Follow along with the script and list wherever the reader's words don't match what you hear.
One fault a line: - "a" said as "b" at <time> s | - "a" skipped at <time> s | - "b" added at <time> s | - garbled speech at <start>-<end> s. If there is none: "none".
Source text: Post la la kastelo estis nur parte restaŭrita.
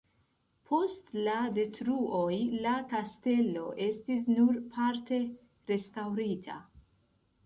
- "detruoj" added at 1.6 s